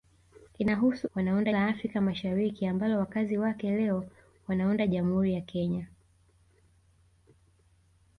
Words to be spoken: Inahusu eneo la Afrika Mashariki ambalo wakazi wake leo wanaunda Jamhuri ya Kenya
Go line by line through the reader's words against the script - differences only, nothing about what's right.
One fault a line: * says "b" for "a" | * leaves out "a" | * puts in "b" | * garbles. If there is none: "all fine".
* says "wanaunda" for "eneo"